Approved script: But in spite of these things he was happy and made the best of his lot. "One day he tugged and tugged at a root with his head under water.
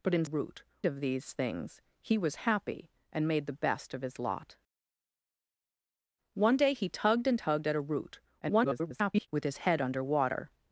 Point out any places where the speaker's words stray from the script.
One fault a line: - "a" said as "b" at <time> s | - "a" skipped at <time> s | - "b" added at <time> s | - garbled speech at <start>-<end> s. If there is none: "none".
- "spite" said as "root" at 0.2 s
- garbled speech at 8.4-9.3 s